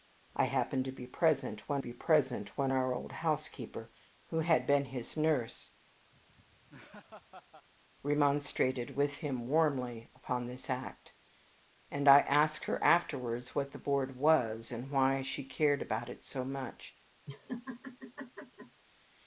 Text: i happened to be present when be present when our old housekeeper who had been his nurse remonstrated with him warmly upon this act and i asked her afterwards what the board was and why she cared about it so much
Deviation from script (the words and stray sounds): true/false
true